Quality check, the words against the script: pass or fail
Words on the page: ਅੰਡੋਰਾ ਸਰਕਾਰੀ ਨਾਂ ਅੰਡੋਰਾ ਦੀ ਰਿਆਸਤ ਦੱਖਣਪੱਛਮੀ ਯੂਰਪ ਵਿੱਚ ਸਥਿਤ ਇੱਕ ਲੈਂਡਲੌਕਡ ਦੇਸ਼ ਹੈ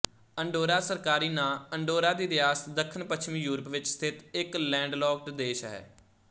pass